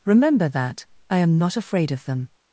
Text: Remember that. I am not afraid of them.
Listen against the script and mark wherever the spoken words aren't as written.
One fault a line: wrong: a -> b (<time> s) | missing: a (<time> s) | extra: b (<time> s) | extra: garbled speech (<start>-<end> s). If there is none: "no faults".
no faults